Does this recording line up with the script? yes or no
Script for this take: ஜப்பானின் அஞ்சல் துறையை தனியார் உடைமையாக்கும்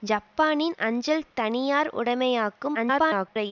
no